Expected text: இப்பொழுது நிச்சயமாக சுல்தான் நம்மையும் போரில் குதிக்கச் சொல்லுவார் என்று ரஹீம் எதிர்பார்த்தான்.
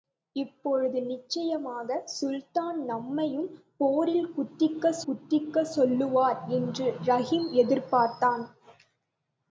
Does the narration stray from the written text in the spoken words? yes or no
yes